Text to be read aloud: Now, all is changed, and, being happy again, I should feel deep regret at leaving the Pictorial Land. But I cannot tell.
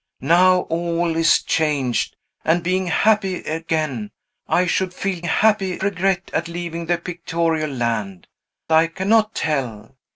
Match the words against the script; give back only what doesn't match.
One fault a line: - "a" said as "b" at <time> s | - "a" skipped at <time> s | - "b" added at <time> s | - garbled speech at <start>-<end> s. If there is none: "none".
- "deep" said as "happy" at 5.2 s
- "But" skipped at 8.3 s